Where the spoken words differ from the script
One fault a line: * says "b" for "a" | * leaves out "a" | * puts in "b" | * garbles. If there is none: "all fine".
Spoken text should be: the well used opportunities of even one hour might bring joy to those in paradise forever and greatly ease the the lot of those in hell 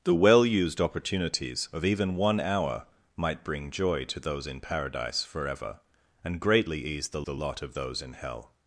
all fine